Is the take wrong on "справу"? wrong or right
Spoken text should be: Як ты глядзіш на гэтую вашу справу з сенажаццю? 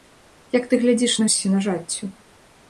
wrong